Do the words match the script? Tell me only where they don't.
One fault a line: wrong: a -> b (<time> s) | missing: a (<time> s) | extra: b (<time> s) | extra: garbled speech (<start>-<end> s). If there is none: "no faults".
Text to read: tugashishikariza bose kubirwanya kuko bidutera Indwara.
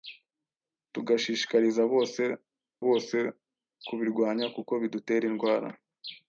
extra: bose (2.9 s)